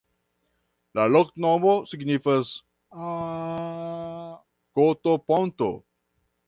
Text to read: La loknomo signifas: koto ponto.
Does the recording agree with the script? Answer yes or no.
yes